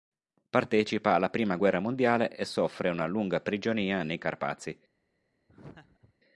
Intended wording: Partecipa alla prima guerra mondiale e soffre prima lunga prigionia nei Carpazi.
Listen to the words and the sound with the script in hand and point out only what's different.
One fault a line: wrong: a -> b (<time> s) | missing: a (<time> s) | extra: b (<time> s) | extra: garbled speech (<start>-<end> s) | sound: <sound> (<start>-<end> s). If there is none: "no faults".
wrong: prima -> una (2.9 s)
sound: laugh (5.5-6.1 s)